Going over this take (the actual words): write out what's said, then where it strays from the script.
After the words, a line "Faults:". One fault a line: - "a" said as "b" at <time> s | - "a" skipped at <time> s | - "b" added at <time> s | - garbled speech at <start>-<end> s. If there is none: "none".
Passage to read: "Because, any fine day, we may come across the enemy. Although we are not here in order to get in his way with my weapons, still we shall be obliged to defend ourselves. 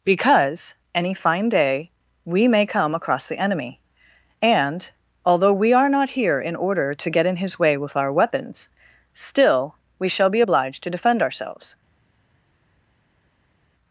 "Because, any fine day, we may come across the enemy. And, although we are not here in order to get in his way with our weapons, still we shall be obliged to defend ourselves.
Faults:
- "And" added at 4.4 s
- "my" said as "our" at 8.0 s